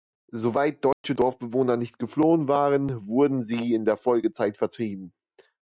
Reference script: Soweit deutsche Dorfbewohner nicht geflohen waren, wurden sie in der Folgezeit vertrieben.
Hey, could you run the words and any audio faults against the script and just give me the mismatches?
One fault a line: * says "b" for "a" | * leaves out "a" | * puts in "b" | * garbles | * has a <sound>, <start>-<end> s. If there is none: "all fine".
* has a dropout, 0.9-1.0 s